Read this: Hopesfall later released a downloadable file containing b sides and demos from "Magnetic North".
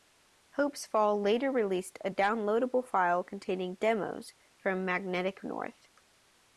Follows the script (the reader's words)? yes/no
no